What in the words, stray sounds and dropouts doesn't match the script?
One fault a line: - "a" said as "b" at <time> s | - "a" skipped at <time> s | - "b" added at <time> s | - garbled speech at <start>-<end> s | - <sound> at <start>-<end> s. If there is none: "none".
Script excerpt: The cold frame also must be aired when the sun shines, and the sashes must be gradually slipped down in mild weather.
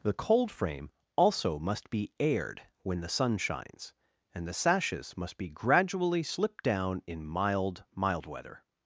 - "mild" added at 8.0 s